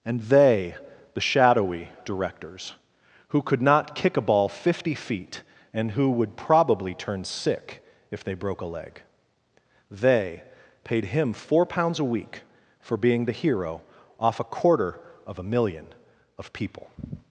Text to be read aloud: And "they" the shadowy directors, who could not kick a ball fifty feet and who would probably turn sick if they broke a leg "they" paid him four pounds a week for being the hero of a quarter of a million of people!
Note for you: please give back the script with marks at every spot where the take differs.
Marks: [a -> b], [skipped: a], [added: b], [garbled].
And "they" the shadowy directors, who could not kick a ball fifty feet and who would probably turn sick if they broke a leg "they" paid him four pounds a week for being the hero [of -> off] a quarter of a million of people!